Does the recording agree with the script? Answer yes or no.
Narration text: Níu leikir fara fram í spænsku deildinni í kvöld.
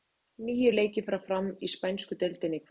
yes